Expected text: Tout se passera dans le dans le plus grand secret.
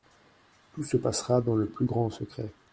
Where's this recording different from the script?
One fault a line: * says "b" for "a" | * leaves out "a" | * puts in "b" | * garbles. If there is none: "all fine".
* leaves out "dans le"